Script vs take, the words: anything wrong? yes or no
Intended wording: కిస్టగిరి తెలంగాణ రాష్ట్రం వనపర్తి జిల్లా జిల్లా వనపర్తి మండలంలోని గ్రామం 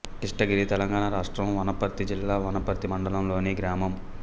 yes